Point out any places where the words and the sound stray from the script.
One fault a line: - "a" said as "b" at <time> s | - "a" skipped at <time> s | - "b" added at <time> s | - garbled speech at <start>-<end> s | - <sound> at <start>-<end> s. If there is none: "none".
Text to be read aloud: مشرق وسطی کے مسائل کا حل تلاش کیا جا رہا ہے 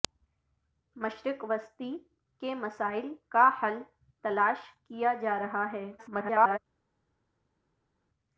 - garbled speech at 6.0-6.6 s